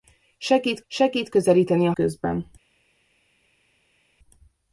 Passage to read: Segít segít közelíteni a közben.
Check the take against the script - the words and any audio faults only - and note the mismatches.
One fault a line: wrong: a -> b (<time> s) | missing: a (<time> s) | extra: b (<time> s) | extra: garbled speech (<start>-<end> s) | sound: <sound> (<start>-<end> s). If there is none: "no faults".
no faults